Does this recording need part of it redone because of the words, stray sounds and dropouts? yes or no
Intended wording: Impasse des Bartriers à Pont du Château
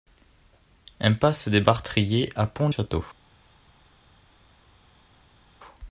yes